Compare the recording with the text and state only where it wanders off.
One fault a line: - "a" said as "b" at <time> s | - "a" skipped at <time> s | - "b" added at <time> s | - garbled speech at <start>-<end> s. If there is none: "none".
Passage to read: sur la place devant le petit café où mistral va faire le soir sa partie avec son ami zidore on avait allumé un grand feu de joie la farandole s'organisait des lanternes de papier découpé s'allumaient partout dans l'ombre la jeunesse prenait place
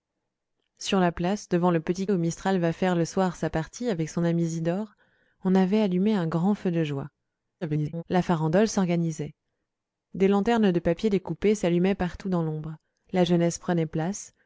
- "café" skipped at 2.1 s
- garbled speech at 7.6-8.0 s